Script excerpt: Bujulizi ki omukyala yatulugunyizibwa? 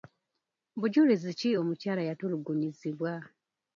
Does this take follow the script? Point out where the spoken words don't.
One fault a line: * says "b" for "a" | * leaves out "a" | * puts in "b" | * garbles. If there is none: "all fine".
all fine